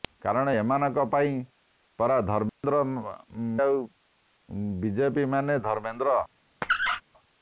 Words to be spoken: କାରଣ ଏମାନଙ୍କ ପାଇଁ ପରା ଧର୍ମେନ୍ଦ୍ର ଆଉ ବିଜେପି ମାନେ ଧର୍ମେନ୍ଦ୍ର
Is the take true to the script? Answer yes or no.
yes